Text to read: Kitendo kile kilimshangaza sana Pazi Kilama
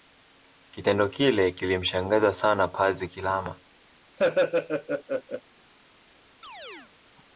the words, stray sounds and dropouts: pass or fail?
fail